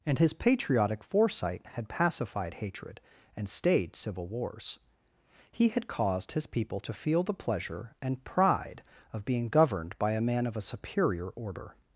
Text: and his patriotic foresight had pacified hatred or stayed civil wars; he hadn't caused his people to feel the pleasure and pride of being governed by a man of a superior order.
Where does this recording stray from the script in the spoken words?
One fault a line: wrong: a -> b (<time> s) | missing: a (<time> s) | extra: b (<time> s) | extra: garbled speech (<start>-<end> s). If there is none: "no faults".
wrong: or -> and (3.4 s)
wrong: hadn't -> had (5.7 s)